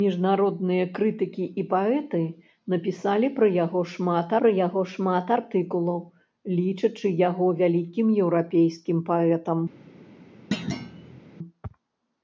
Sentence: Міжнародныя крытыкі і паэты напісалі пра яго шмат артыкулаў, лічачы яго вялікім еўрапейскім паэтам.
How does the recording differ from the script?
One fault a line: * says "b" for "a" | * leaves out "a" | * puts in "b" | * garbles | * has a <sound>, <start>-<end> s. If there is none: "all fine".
* puts in "пра яго шмат"
* has a thud, 10.5-11.2 s